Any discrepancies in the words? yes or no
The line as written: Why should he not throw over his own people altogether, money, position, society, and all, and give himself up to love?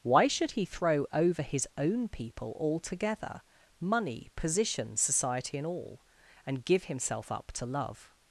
yes